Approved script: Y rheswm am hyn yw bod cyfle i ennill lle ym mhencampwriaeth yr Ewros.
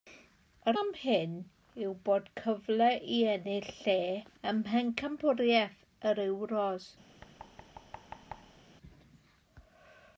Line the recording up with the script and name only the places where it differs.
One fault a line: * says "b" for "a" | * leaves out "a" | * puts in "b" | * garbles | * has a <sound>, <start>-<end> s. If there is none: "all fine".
* leaves out "rheswm"
* has a thud, 7.2-8.6 s